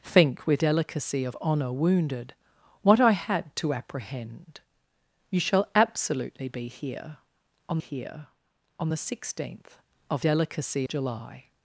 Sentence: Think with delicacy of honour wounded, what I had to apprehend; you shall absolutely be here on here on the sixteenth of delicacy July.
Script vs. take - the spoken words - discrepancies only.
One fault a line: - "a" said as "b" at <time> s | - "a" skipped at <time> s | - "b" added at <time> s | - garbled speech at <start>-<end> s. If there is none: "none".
none